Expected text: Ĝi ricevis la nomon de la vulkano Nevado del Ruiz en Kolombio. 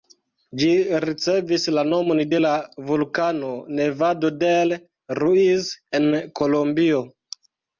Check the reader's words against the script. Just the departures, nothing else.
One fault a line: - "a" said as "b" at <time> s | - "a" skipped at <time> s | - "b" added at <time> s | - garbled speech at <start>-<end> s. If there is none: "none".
none